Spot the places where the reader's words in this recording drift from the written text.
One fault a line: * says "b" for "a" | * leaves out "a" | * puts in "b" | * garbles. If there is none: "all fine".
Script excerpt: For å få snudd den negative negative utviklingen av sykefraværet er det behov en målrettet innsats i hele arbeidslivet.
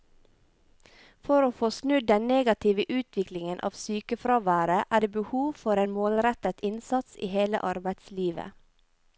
* leaves out "negative"
* puts in "for"